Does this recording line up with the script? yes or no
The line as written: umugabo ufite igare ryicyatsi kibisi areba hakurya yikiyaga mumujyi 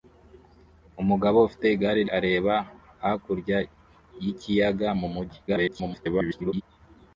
no